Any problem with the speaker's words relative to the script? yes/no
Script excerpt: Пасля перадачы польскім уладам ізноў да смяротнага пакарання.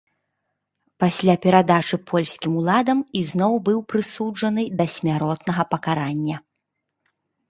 yes